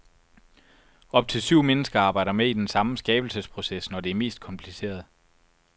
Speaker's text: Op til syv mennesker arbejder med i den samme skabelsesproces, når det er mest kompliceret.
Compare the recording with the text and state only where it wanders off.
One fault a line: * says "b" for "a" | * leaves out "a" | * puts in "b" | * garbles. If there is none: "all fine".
all fine